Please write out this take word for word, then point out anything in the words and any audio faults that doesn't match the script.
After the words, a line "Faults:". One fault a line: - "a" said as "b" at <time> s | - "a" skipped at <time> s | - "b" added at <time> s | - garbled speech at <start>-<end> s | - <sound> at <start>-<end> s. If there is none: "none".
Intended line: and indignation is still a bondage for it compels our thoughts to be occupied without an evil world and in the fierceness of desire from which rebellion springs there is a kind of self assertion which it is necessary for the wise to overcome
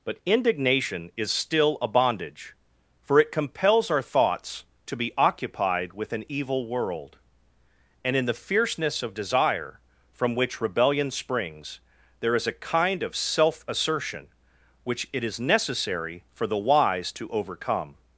but indignation is still a bondage for it compels our thoughts to be occupied with an evil world and in the fierceness of desire from which rebellion springs there is a kind of self assertion which it is necessary for the wise to overcome
Faults:
- "and" said as "but" at 0.0 s
- "without" said as "with" at 5.9 s